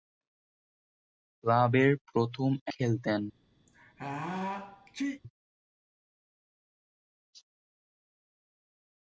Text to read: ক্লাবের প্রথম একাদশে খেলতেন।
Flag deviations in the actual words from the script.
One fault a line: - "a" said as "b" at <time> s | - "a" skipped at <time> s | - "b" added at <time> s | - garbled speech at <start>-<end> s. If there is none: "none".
- "একাদশে" skipped at 2.5 s